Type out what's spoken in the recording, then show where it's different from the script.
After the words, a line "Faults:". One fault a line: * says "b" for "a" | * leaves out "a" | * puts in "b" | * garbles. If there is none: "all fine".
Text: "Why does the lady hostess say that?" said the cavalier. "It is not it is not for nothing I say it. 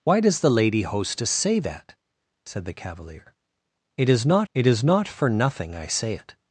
"Why does the lady hostess say that?" said the cavalier. "It is not it is not for nothing I say it.
Faults:
all fine